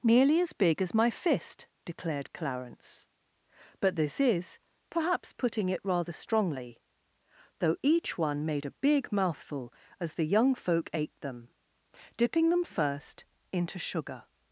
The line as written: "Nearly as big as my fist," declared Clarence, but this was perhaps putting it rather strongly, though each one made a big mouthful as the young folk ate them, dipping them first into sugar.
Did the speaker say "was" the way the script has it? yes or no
no